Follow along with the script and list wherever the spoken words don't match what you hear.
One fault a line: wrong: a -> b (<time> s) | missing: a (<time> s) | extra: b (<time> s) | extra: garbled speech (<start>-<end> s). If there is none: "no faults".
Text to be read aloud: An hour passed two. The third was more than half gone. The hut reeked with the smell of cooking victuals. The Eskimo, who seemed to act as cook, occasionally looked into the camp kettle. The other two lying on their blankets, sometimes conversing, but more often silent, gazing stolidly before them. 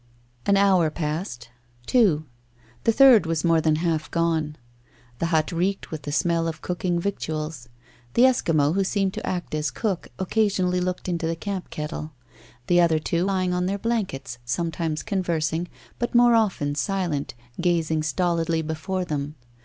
no faults